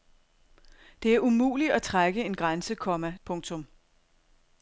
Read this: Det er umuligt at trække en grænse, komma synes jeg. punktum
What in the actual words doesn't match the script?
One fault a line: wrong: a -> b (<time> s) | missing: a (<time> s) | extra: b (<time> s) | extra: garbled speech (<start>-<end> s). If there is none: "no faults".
missing: synes jeg (3.1 s)